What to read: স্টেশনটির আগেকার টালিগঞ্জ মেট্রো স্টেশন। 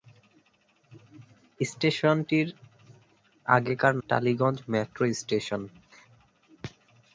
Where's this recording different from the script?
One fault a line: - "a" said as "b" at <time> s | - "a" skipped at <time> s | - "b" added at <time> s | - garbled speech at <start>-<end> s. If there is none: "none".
none